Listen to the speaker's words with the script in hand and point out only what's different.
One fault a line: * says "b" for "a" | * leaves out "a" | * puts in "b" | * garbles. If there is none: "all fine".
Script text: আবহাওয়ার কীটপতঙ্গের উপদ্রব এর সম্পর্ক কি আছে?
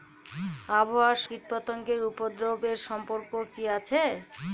all fine